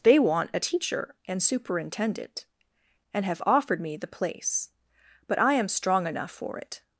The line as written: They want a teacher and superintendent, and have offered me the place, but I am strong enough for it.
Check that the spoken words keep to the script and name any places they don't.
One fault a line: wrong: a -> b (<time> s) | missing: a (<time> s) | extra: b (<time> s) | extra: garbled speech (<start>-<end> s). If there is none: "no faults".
no faults